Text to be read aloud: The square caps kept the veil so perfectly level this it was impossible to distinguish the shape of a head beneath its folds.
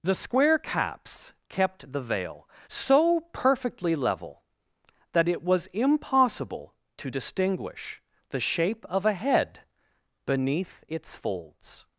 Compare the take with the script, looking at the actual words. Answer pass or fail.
fail